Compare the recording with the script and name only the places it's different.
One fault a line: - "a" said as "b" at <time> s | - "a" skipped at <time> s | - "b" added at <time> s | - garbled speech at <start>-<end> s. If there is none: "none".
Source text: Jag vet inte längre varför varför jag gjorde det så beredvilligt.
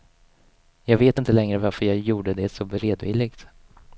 - "varför" skipped at 1.8 s